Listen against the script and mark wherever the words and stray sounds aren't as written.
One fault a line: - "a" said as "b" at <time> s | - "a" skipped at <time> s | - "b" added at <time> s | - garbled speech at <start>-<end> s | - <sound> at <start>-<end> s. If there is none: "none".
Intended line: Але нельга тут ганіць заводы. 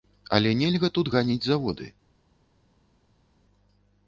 none